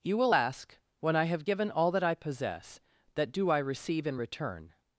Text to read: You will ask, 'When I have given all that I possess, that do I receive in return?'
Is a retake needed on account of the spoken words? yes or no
no